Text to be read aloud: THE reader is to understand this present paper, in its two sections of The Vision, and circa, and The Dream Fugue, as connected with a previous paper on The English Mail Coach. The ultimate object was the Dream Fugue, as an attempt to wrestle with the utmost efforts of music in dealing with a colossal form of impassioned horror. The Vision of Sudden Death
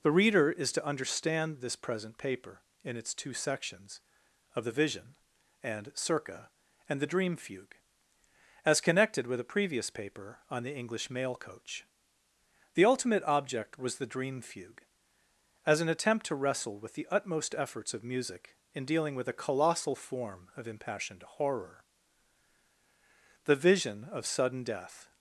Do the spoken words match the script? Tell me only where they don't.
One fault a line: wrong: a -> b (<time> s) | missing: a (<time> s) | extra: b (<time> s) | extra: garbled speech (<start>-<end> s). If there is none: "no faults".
no faults